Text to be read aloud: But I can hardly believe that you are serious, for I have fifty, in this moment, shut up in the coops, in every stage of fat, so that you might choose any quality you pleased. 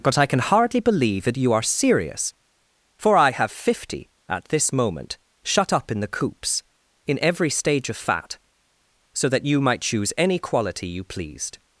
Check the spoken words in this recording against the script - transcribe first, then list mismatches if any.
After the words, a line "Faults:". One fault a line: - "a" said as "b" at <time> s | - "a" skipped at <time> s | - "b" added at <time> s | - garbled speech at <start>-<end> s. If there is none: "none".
But I can hardly believe that you are serious, for I have fifty, at this moment, shut up in the coops, in every stage of fat, so that you might choose any quality you pleased.
Faults:
- "in" said as "at" at 4.3 s